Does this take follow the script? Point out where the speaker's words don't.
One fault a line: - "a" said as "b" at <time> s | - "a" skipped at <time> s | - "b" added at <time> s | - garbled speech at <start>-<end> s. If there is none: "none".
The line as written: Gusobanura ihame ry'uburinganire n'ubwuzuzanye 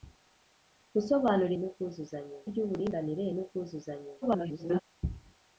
- "ihame" said as "n'ubwuzuzanye" at 1.6 s
- garbled speech at 4.2-4.8 s